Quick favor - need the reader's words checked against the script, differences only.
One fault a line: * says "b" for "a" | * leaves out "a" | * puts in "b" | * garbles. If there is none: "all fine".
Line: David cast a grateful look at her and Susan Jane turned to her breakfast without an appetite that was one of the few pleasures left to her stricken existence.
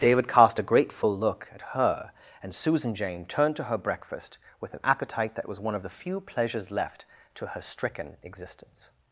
* says "with" for "without"